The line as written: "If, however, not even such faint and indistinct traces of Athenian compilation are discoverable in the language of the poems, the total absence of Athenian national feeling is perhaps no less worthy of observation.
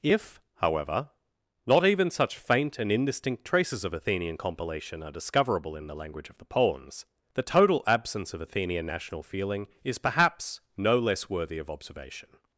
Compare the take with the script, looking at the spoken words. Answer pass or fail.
pass